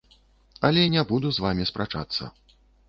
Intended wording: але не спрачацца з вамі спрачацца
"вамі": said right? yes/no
yes